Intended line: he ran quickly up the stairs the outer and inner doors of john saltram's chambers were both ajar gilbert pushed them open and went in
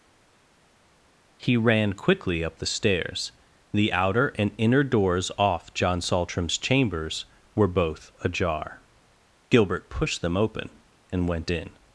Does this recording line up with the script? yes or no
no